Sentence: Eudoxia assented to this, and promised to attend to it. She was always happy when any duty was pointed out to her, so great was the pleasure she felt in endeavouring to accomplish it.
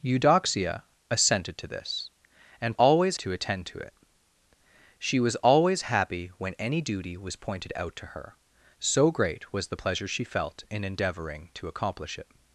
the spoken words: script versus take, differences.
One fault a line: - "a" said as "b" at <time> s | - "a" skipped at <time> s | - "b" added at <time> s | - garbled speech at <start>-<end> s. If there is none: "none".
- "promised" said as "always" at 2.7 s